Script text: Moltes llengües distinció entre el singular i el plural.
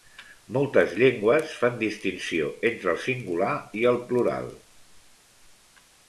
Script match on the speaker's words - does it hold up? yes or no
no